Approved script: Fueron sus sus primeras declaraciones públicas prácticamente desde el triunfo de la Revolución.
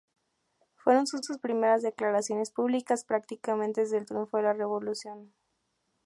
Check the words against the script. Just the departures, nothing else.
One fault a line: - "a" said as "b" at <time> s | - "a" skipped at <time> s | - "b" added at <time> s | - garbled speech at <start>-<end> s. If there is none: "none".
none